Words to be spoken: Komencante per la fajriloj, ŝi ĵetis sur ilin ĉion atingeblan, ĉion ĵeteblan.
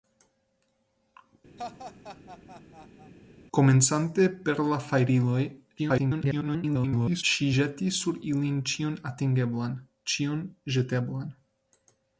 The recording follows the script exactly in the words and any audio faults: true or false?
false